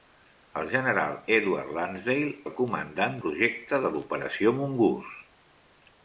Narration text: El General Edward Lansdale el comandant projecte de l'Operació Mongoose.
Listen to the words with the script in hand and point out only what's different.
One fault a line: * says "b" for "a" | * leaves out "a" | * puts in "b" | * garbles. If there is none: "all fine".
all fine